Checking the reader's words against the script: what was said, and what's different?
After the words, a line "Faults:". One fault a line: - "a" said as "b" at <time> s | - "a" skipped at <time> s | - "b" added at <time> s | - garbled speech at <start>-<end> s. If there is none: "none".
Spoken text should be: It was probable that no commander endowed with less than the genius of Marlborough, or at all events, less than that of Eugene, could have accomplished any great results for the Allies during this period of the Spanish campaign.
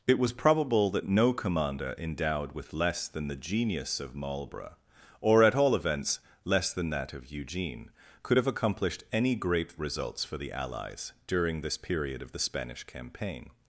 It was probable that no commander endowed with less than the genius of Marlborough, or at all events, less than that of Eugene, could have accomplished any great results for the Allies during this period of the Spanish campaign.
Faults:
none